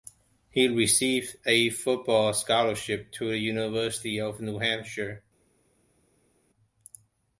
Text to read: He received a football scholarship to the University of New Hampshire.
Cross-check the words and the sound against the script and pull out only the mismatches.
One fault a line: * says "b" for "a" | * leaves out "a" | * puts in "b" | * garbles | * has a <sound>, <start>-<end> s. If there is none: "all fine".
all fine